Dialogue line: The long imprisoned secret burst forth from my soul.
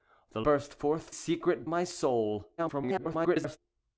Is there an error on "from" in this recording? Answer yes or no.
yes